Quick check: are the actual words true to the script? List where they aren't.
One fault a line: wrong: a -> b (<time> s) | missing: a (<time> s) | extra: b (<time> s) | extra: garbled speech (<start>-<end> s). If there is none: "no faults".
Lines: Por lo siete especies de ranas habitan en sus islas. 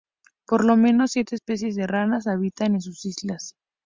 extra: menos (0.8 s)